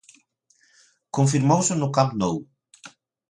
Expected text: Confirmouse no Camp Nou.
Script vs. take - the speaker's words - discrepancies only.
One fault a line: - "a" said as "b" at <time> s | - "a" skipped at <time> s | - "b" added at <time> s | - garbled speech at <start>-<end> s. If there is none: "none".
none